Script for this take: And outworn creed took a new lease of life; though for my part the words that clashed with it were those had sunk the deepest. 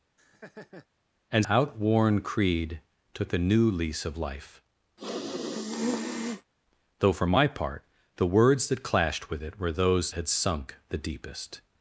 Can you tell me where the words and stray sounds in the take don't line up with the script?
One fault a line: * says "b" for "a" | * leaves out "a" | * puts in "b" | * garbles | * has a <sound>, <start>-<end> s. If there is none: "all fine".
* has a laugh, 0.2-0.9 s
* has a sniff, 5.0-6.5 s